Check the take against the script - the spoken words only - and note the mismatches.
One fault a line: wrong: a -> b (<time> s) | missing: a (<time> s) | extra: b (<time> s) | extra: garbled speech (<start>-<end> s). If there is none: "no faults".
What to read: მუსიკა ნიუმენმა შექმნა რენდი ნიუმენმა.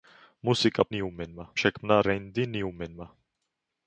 no faults